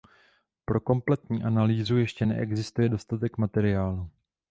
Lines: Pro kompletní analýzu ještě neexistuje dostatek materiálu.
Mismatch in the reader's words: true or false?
false